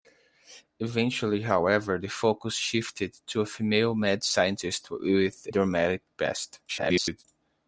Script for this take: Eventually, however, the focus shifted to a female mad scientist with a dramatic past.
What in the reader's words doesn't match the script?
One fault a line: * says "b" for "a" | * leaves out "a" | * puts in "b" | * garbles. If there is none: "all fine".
* leaves out "a"
* garbles